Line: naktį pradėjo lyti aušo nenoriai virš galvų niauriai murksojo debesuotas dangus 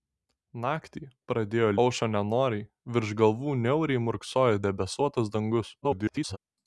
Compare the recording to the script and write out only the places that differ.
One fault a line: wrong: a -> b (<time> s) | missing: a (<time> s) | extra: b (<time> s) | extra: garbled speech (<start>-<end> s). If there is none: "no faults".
missing: lyti (1.7 s)
extra: garbled speech (5.8-6.4 s)